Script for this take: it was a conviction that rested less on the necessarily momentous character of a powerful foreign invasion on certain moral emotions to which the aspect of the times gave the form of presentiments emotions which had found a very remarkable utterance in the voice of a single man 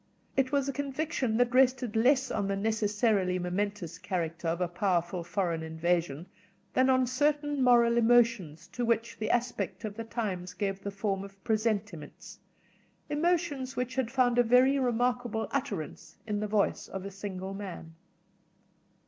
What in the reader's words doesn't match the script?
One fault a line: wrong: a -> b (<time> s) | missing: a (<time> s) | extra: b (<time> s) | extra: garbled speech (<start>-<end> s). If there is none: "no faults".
extra: than (6.7 s)